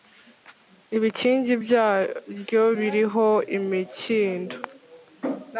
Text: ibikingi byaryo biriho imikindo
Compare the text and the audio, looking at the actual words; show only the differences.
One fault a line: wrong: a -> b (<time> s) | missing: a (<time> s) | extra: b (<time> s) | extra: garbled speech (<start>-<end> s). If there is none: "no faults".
no faults